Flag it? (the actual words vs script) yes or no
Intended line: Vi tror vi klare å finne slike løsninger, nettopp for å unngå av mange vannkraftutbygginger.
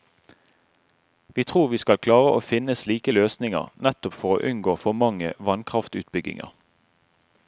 yes